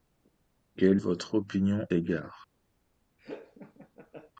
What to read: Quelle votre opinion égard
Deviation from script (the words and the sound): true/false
true